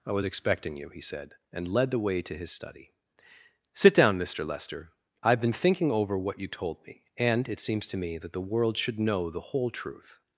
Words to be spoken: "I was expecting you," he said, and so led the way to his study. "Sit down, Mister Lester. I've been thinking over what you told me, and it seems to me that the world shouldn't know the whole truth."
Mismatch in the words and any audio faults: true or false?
true